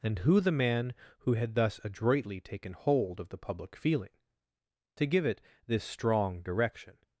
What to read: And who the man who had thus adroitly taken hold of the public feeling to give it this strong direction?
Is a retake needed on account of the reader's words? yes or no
no